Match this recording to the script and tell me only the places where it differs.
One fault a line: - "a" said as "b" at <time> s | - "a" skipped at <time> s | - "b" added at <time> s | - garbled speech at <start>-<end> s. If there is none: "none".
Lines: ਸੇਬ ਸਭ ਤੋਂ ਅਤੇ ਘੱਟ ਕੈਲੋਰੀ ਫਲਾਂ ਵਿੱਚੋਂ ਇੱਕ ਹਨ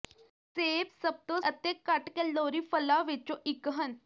none